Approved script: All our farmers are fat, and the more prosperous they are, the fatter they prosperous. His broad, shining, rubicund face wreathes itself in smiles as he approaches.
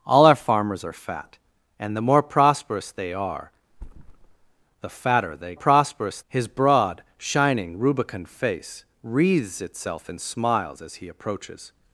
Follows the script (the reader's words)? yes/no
yes